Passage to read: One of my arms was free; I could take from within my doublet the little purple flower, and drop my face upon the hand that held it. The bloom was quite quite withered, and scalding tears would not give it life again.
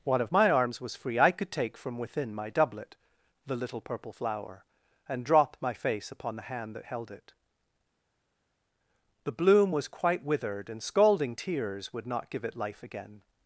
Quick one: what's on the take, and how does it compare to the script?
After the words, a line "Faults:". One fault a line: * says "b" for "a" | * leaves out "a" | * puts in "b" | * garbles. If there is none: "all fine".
One of my arms was free; I could take from within my doublet the little purple flower, and drop my face upon the hand that held it. The bloom was quite withered, and scalding tears would not give it life again.
Faults:
* leaves out "quite"